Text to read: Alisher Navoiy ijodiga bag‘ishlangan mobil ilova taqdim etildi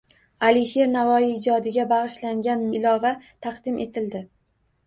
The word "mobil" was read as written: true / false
false